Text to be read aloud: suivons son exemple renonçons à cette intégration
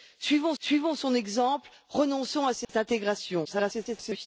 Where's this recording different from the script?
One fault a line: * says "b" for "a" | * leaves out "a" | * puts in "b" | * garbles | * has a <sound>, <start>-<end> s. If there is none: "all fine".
* puts in "suivons"
* has a dropout, 2.6-2.7 s
* garbles